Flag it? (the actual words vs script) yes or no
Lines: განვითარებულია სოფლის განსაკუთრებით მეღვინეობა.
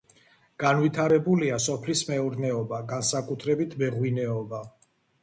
yes